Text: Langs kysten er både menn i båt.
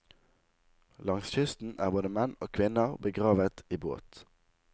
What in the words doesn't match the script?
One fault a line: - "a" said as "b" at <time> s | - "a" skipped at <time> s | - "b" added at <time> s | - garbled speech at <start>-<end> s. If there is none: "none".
- "og kvinner begravet" added at 2.4 s